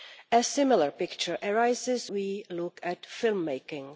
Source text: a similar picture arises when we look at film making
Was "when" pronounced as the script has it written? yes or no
no